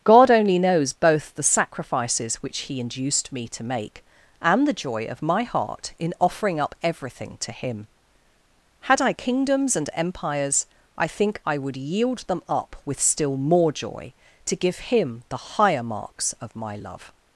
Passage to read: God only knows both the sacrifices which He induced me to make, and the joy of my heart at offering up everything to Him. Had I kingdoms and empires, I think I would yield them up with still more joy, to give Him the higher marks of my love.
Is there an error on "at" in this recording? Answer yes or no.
yes